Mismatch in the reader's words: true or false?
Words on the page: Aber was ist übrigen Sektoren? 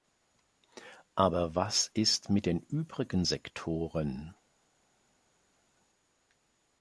true